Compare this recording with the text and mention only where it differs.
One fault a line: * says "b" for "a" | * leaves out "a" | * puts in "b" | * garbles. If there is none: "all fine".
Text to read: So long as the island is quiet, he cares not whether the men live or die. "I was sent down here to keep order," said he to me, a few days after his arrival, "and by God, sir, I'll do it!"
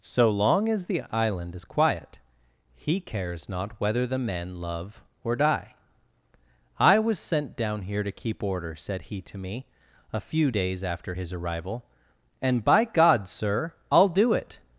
* says "love" for "live"